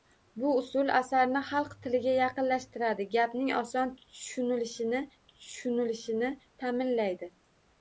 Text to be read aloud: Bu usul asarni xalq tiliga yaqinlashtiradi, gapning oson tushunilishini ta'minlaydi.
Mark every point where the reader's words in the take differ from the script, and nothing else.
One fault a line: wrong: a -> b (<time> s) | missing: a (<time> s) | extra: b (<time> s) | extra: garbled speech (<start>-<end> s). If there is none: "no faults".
extra: tushunilishini (5.3 s)